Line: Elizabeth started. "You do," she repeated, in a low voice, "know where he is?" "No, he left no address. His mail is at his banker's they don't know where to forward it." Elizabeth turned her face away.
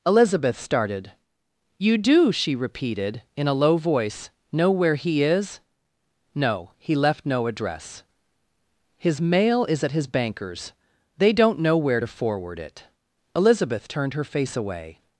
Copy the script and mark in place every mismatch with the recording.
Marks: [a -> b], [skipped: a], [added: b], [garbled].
Elizabeth started. "You do," she repeated, in a low voice, "know where he is?" "No, he left no address. His mail is at his banker's they don't know where to forward it." Elizabeth turned her face away.